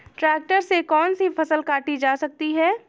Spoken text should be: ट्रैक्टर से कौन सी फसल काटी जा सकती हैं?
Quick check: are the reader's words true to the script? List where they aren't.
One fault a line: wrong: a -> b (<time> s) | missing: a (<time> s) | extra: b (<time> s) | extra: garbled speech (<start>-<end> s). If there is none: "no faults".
no faults